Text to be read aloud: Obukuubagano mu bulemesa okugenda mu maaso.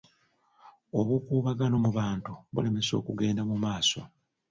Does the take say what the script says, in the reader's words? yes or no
no